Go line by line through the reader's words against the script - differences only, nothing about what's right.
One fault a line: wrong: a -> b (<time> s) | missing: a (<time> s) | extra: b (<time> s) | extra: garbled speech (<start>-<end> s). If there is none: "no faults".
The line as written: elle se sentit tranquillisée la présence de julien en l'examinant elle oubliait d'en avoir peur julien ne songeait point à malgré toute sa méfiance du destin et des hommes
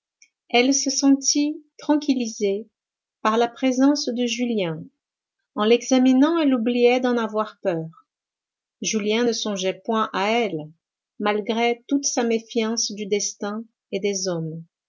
extra: par (3.2 s)
extra: elle (10.3 s)